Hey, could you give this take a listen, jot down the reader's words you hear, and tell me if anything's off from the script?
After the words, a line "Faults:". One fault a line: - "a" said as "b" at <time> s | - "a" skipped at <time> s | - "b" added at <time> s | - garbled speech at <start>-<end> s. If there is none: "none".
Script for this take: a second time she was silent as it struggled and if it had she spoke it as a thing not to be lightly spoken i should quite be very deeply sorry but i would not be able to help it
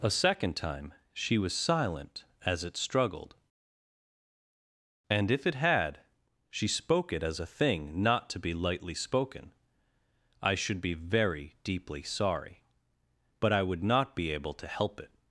a second time she was silent as it struggled and if it had she spoke it as a thing not to be lightly spoken i should be very deeply sorry but i would not be able to help it
Faults:
- "quite" skipped at 10.8 s